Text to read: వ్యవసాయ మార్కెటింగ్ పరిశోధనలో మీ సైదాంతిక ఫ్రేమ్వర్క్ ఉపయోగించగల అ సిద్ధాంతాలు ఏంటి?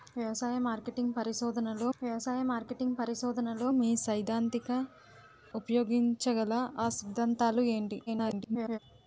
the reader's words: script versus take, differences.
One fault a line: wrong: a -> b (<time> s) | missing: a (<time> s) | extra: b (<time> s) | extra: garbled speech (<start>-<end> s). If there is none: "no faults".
extra: వ్యవసాయ మార్కెటింగ్ పరిశోధనలో (2.0 s)
missing: ఫ్రేమ్వర్క్ (4.7 s)
extra: garbled speech (8.1-8.8 s)